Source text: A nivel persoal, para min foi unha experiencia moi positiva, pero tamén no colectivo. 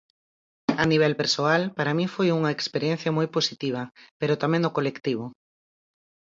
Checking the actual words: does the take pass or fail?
pass